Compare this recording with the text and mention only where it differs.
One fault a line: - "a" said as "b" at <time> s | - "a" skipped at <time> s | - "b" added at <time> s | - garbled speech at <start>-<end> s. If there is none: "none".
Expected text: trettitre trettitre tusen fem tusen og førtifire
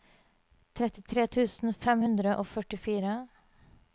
- "trettitre" skipped at 1.2 s
- "tusen" said as "hundre" at 2.0 s